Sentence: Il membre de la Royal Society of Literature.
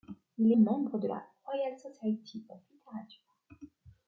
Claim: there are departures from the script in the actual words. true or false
false